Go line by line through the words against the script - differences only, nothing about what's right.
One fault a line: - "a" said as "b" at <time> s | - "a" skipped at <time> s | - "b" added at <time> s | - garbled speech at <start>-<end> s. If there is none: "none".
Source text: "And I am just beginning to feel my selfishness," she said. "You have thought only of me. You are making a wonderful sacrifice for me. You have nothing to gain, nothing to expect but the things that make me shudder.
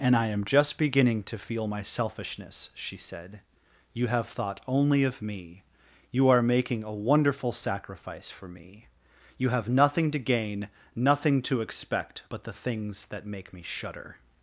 none